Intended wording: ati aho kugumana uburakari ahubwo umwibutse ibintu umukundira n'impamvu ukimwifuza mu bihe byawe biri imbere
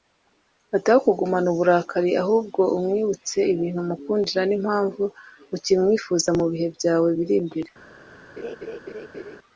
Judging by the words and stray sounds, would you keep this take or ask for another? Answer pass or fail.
fail